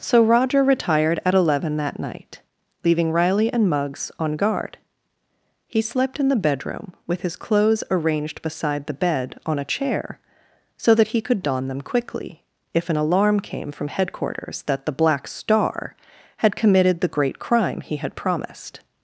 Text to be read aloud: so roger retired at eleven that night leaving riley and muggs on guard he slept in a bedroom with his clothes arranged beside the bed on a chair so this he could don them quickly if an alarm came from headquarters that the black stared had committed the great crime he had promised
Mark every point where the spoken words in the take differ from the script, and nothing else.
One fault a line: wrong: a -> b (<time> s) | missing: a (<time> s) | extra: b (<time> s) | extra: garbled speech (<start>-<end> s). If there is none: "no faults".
wrong: a -> the (6.3 s)
wrong: this -> that (10.9 s)
wrong: stared -> star (15.3 s)